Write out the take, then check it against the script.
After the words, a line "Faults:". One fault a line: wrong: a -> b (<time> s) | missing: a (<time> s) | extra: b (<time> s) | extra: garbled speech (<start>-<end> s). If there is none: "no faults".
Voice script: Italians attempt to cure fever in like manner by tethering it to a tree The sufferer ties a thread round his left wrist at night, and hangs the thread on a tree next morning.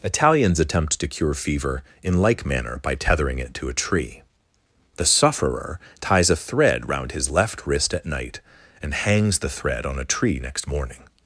Italians attempt to cure fever in like manner by tethering it to a tree The sufferer ties a thread round his left wrist at night, and hangs the thread on a tree next morning.
Faults:
no faults